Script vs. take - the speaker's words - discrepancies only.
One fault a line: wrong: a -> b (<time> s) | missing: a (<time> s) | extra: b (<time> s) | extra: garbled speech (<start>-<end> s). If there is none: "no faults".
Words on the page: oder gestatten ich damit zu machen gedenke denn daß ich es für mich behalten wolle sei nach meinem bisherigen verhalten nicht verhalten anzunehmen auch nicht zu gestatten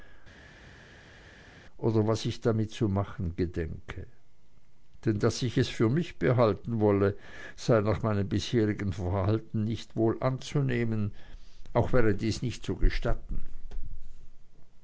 wrong: gestatten -> was (2.1 s)
wrong: verhalten -> wohl (10.0 s)
extra: wäre dies (11.9 s)